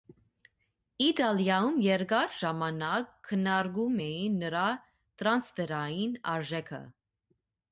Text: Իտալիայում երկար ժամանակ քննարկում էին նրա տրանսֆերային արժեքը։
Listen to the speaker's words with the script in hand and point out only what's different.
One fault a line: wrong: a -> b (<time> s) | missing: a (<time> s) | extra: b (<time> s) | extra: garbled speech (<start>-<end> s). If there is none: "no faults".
no faults